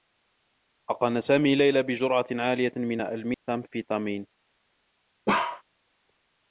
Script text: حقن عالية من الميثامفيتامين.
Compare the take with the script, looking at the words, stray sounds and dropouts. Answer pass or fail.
fail